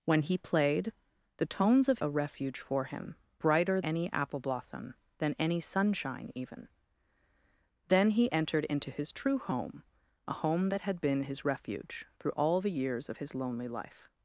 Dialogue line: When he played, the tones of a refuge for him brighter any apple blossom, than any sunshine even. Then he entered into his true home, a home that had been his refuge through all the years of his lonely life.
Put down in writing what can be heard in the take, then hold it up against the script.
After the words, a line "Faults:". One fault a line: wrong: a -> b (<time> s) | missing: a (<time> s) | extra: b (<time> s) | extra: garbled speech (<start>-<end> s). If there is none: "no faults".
When he played, the tones of a refuge for him brighter any apple blossom, than any sunshine even. Then he entered into his true home, a home that had been his refuge through all the years of his lonely life.
Faults:
no faults